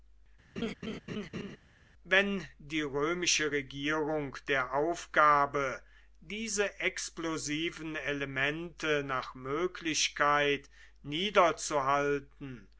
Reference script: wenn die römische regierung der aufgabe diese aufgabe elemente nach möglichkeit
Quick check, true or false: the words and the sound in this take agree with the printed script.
false